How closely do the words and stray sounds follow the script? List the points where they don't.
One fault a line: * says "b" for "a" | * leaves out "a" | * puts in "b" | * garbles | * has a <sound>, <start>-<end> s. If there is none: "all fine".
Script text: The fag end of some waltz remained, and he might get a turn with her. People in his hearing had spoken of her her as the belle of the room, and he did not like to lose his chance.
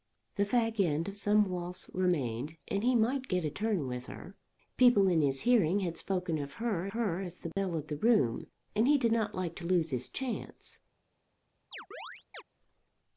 * has a dropout, 7.5-7.6 s
* has a chirp, 11.7-12.4 s